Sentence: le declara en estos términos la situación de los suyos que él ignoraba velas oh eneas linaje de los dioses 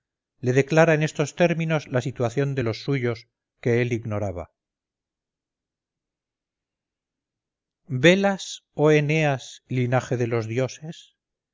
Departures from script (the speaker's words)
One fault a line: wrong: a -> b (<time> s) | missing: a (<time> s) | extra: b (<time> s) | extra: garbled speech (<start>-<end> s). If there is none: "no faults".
no faults